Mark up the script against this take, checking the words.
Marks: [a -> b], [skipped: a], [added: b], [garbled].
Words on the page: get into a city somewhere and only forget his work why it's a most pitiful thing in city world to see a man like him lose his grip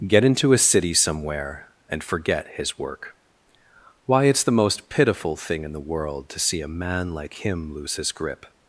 get into a city somewhere and [skipped: only] forget his work why it's [a -> the] most pitiful thing in [city -> the] world to see a man like him lose his grip